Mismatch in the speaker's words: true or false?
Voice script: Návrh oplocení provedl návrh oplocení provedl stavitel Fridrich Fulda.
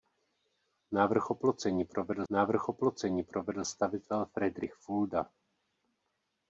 false